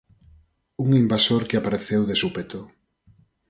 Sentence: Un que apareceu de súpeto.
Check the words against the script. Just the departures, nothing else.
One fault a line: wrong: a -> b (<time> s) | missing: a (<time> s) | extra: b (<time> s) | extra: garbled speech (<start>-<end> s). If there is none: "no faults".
extra: invasor (1.0 s)